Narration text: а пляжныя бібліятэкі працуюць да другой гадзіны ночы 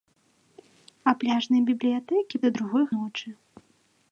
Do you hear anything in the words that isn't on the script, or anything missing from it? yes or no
yes